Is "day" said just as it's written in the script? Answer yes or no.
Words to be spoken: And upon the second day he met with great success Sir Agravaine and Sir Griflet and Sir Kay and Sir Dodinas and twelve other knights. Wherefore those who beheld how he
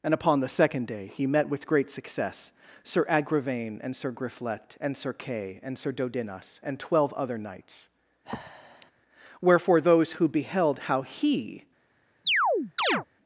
yes